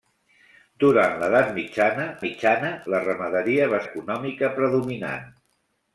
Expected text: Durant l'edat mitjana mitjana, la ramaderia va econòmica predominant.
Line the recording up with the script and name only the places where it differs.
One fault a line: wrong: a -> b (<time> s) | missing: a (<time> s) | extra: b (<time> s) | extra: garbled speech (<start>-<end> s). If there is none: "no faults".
no faults